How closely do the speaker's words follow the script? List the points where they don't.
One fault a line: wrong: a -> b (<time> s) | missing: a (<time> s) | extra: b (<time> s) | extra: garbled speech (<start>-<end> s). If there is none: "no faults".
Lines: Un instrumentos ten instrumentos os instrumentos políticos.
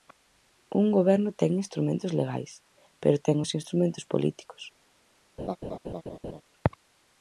wrong: instrumentos -> goberno (1.0 s)
extra: legais pero ten (2.2 s)